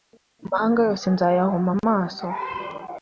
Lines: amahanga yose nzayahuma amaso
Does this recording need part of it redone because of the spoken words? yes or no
no